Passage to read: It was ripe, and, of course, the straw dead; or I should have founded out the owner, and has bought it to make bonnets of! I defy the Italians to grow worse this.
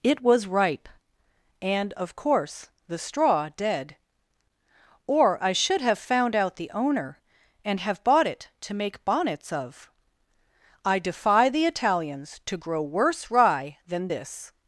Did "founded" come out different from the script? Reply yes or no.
yes